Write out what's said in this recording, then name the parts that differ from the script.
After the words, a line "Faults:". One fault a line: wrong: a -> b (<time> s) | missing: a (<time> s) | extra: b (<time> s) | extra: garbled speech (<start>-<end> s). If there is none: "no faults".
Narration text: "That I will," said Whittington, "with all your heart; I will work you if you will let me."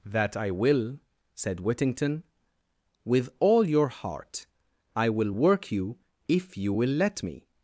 "That I will," said Whittington, "with all your heart; I will work you if you will let me."
Faults:
no faults